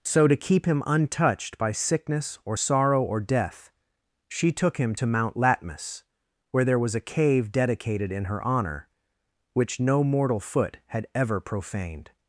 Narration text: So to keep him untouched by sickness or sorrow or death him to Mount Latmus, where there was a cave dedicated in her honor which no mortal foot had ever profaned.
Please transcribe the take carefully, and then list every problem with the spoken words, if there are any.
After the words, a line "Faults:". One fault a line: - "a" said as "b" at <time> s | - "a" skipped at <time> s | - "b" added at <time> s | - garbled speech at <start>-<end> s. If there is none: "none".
So to keep him untouched by sickness or sorrow or death she took him to Mount Latmus, where there was a cave dedicated in her honor which no mortal foot had ever profaned.
Faults:
- "she took" added at 4.3 s